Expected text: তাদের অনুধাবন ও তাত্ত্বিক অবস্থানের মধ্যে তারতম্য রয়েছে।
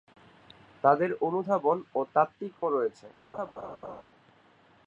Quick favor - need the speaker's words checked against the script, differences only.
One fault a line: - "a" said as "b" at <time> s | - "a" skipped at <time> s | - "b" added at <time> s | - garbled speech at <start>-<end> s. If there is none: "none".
- "অবস্থানের মধ্যে তারতম্য" skipped at 2.5 s